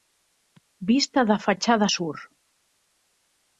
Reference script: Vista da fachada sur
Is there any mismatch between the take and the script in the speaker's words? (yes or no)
no